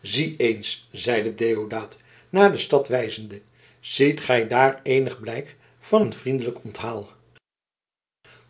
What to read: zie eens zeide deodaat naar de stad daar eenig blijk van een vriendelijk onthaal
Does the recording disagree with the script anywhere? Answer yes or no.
yes